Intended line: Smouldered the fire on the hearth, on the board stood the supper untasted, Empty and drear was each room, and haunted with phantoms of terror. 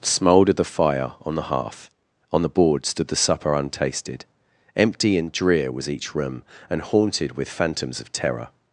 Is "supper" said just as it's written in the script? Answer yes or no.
yes